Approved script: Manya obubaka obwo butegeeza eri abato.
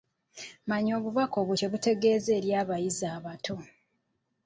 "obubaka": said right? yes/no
yes